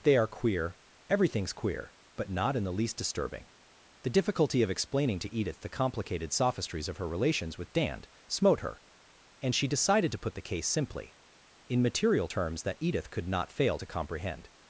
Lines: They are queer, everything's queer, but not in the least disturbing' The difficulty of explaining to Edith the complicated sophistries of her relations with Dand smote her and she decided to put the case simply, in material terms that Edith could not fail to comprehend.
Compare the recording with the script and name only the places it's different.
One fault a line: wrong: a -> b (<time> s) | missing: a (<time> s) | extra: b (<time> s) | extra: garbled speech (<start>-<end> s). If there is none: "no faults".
no faults